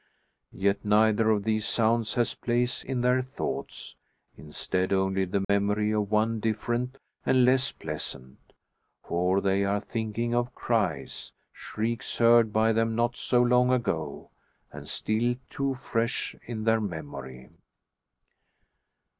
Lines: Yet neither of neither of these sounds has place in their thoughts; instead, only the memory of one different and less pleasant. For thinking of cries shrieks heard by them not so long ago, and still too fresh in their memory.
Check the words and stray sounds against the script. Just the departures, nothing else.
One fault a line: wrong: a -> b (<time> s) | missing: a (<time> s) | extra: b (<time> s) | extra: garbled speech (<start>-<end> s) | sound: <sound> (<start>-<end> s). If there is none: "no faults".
missing: neither of (1.4 s)
sound: dropout (5.4-5.5 s)
extra: they are (9.4 s)